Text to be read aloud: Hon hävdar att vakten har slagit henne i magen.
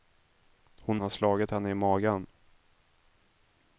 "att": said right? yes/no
no